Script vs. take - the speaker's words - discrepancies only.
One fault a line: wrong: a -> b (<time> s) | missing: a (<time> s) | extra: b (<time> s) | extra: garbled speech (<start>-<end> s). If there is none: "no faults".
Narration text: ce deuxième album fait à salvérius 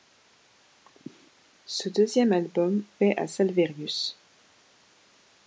no faults